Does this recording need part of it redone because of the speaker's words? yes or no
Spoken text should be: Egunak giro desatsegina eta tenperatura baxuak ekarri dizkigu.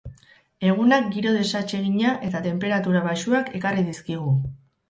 no